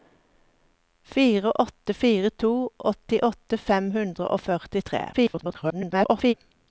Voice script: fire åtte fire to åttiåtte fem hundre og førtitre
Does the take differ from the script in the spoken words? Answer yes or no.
yes